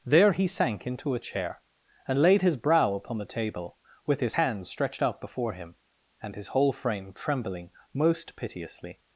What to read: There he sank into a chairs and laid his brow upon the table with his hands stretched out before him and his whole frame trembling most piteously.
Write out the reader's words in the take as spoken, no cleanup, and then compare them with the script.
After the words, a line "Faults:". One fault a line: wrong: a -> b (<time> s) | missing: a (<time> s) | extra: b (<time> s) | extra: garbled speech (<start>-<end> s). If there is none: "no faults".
There he sank into a chair and laid his brow upon the table with his hands stretched out before him and his whole frame trembling most piteously.
Faults:
wrong: chairs -> chair (1.2 s)